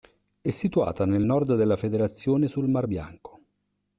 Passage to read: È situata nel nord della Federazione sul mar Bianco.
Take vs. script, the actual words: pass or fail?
pass